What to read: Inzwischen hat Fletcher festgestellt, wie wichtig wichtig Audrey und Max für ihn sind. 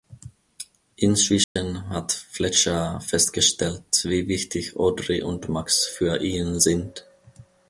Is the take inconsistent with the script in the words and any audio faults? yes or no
yes